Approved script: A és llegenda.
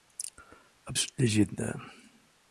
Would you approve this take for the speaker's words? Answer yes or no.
yes